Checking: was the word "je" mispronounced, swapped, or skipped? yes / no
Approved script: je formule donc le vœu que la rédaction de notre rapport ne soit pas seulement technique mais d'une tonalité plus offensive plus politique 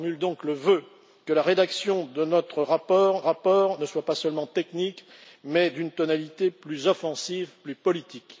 no